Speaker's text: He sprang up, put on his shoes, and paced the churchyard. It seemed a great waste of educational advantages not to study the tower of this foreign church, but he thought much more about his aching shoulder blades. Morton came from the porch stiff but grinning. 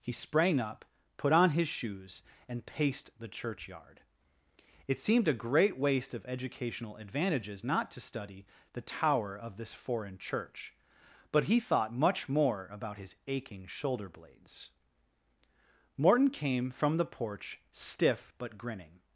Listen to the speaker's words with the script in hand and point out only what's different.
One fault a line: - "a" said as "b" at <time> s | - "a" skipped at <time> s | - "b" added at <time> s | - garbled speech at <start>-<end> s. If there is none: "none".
none